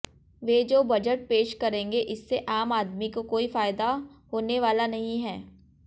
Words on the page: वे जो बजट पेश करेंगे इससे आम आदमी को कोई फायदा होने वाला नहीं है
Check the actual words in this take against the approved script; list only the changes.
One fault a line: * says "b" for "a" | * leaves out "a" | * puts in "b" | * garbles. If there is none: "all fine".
all fine